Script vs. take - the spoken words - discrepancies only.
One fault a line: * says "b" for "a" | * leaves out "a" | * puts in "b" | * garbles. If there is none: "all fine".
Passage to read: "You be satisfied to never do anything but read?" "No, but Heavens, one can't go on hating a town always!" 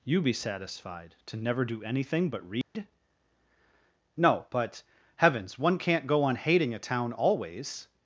all fine